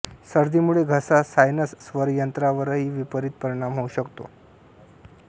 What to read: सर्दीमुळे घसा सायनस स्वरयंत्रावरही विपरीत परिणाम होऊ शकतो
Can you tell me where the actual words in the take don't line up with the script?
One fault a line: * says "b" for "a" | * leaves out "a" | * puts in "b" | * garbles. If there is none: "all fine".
all fine